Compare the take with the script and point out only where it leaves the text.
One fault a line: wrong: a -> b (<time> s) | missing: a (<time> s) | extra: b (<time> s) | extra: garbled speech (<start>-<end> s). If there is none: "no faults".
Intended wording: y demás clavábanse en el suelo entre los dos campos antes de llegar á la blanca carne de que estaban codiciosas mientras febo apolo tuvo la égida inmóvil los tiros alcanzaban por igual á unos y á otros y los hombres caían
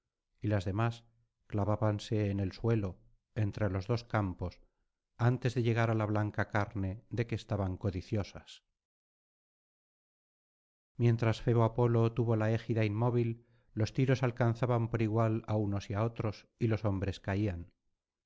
extra: las (0.5 s)